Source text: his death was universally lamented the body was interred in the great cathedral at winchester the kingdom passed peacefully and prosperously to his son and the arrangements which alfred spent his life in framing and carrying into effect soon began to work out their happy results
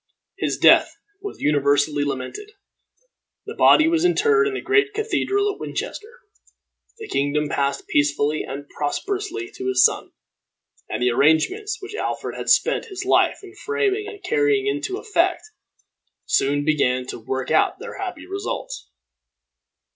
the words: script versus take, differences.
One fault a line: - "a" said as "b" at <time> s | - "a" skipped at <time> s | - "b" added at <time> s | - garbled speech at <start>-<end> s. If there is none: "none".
- "had" added at 12.4 s